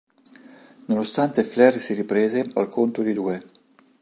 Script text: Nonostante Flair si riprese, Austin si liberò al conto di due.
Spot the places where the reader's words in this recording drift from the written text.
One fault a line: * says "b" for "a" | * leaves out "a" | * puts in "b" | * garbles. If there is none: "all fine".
* leaves out "Austin si liberò"